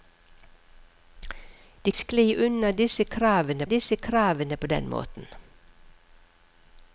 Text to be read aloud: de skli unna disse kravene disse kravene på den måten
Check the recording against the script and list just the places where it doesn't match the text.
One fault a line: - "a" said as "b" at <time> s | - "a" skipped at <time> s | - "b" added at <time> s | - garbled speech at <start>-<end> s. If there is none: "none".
none